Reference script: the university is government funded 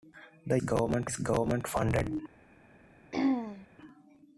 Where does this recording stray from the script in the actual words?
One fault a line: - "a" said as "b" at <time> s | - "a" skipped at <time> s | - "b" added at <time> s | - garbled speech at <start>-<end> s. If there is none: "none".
- "university" said as "government" at 0.6 s